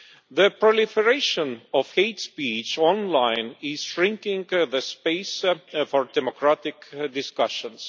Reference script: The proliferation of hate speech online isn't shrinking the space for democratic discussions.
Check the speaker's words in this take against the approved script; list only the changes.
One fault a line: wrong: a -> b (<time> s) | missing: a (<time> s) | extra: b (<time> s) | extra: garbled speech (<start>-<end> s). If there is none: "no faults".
wrong: isn't -> is (3.6 s)